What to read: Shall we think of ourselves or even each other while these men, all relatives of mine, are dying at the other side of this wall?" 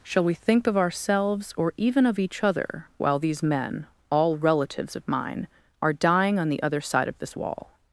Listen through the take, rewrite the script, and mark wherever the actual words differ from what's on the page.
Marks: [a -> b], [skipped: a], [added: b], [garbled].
Shall we think of ourselves or even [added: of] each other while these men, all relatives of mine, are dying [at -> on] the other side of this wall?"